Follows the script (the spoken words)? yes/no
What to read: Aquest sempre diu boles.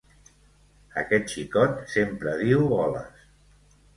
no